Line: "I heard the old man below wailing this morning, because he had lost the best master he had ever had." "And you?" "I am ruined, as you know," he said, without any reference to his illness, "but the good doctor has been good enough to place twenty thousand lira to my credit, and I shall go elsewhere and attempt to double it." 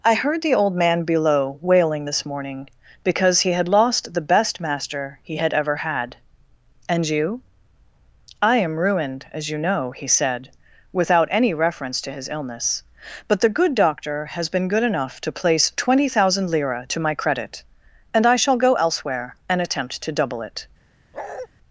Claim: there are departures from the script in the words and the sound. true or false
true